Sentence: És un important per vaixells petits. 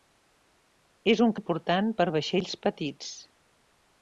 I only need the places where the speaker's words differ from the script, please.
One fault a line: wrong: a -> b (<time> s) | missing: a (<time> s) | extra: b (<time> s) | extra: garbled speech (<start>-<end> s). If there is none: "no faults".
no faults